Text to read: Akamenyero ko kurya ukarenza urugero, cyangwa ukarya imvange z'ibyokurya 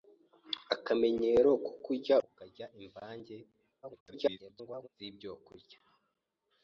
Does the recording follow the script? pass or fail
fail